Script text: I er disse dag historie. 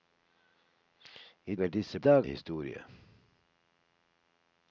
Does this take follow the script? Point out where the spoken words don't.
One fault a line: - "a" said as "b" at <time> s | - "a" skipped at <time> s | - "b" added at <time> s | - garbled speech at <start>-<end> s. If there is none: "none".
none